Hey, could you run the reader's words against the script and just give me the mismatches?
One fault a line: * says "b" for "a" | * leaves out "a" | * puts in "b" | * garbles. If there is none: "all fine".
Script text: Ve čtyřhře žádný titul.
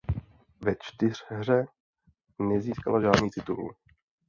* puts in "nezískala"